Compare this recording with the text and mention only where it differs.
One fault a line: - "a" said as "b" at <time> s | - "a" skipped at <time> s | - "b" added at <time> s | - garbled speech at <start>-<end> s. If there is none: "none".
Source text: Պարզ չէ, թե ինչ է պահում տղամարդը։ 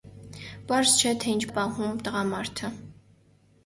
none